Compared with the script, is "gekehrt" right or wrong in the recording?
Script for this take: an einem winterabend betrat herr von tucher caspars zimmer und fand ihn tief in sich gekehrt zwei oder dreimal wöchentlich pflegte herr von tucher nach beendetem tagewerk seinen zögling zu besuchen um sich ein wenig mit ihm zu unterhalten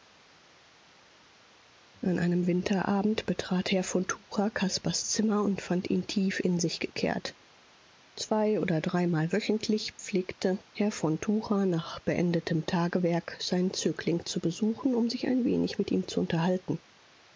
right